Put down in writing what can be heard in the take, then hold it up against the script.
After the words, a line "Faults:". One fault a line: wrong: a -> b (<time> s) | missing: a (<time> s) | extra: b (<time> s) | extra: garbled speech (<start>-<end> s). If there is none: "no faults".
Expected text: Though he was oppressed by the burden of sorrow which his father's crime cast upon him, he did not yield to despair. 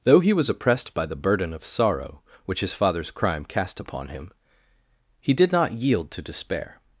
Though he was oppressed by the burden of sorrow which his father's crime cast upon him, he did not yield to despair.
Faults:
no faults